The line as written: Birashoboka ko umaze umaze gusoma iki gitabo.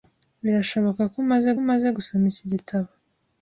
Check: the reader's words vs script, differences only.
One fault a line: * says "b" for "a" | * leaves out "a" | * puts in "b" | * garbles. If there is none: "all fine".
all fine